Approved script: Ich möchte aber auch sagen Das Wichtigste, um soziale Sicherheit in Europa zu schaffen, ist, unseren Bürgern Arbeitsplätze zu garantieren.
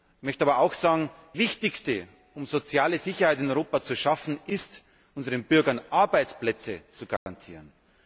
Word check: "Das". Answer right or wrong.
wrong